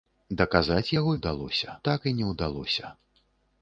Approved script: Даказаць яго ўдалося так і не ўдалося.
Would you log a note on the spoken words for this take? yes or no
no